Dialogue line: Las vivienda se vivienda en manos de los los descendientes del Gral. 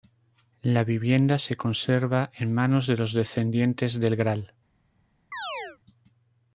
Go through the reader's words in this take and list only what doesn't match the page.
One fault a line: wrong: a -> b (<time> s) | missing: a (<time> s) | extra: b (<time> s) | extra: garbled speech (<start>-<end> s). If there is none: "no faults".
wrong: Las -> La (0.6 s)
wrong: vivienda -> conserva (1.6 s)
missing: los (3.1 s)